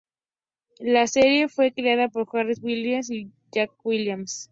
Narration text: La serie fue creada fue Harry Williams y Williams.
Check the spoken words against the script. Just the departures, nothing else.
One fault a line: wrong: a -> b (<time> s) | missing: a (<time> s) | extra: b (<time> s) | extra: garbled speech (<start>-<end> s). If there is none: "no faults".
wrong: fue -> por (2.1 s)
extra: Jack (3.5 s)